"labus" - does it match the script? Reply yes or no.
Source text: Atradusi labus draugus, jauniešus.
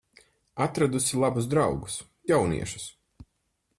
yes